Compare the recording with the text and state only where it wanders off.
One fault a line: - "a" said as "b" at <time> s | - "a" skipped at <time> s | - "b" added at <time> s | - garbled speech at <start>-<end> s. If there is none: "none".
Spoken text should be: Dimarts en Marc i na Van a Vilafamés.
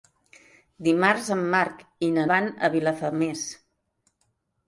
none